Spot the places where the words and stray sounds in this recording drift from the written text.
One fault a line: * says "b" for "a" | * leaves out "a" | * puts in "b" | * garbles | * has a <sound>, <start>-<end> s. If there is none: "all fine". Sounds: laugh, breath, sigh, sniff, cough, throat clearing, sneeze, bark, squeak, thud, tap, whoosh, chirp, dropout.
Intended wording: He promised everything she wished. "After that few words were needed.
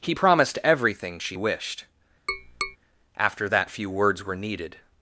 * has a tap, 2.3-2.8 s